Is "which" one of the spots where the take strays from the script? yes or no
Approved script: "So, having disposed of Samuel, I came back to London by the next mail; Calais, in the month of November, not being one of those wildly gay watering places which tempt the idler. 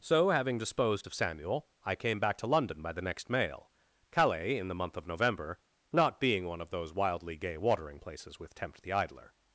yes